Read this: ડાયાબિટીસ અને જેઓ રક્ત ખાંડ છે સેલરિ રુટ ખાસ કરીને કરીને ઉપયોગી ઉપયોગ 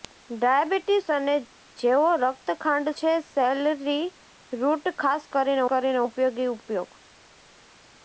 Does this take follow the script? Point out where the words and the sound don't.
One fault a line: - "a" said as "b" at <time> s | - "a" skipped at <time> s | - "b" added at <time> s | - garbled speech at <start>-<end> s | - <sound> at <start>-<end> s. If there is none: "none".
none